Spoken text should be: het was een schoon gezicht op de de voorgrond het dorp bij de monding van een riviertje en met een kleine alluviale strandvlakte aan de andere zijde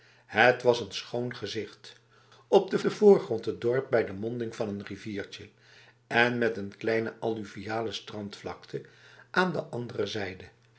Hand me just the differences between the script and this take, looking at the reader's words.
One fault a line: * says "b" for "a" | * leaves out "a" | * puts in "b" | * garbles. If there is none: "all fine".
all fine